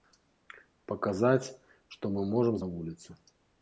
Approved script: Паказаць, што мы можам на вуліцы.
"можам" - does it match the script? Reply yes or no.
yes